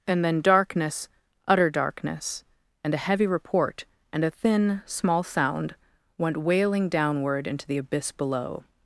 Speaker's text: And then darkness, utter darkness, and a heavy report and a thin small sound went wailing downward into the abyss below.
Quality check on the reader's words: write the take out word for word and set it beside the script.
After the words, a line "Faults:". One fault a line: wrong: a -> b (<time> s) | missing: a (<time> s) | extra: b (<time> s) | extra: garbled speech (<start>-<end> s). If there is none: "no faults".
And then darkness, utter darkness, and a heavy report and a thin small sound went wailing downward into the abyss below.
Faults:
no faults